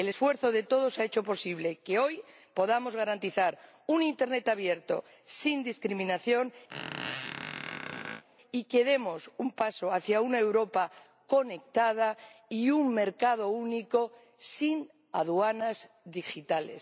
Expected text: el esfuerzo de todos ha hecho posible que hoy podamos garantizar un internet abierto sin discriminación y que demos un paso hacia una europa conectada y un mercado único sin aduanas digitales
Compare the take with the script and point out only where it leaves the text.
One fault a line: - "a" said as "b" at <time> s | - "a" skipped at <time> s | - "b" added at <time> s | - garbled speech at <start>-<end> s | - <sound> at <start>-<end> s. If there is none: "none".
- squeak at 6.7-8.2 s